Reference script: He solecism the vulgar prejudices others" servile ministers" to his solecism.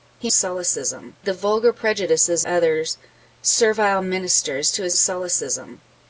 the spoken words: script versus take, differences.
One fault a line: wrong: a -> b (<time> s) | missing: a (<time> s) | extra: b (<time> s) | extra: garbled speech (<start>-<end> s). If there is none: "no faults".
no faults